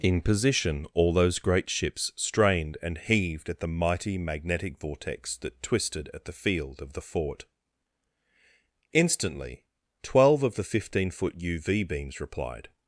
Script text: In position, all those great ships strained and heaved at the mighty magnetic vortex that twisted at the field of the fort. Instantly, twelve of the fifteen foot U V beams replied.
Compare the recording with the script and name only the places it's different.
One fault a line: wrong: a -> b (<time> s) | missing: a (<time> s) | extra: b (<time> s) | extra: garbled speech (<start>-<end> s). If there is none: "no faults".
no faults